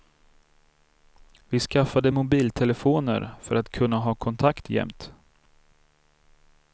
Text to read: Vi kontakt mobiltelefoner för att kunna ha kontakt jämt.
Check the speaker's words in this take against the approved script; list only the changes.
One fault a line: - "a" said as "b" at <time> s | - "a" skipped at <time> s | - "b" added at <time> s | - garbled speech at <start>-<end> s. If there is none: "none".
- "kontakt" said as "skaffade" at 1.6 s